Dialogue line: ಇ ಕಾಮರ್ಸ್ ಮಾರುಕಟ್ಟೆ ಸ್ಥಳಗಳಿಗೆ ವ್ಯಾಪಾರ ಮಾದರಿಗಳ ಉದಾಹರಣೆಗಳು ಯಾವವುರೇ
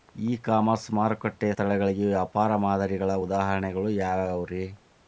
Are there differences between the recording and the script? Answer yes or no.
no